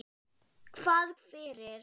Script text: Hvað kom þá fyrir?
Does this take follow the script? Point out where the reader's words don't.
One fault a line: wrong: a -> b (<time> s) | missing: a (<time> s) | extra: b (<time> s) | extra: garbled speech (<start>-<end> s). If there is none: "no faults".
missing: kom þá (1.1 s)